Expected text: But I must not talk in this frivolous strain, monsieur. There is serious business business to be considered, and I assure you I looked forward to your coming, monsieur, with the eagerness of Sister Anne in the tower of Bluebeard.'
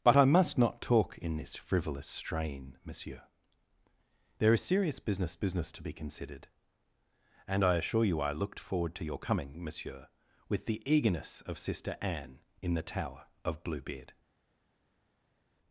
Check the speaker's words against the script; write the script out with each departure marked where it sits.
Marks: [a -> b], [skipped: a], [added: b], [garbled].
But I must not talk in this frivolous strain, monsieur. There is serious business business to be considered, and I assure you I looked forward to your coming, monsieur, with the eagerness of Sister Anne in the tower of Bluebeard.'